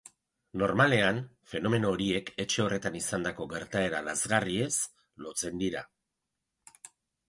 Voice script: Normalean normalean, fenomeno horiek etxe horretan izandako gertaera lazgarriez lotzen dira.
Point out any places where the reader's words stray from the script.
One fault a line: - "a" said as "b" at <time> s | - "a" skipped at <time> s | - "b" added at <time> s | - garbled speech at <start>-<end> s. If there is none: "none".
- "normalean" skipped at 1.2 s